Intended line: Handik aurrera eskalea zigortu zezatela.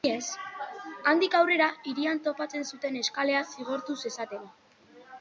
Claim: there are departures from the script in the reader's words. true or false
true